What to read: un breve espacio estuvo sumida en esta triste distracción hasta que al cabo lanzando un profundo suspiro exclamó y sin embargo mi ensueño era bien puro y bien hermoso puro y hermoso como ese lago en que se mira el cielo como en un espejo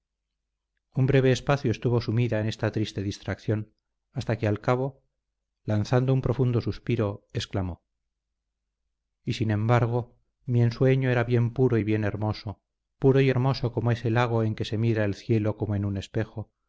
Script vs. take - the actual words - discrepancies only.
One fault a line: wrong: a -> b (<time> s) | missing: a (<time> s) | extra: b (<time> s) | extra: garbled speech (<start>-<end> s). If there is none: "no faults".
no faults